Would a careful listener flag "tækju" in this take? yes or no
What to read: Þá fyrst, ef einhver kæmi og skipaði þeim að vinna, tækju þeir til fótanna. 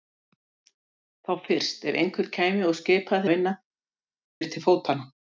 yes